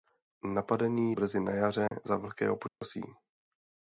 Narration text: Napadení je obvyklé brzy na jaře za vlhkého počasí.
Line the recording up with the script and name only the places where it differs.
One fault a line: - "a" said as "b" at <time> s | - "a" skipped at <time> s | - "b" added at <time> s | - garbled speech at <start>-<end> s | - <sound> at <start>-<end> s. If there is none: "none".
- "je obvyklé" skipped at 1.1 s
- dropout at 1.9-1.9 s
- dropout at 2.7-2.8 s